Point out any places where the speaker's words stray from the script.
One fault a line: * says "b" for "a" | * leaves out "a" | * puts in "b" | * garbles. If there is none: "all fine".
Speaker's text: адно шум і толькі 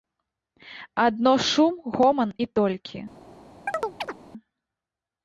* puts in "гоман"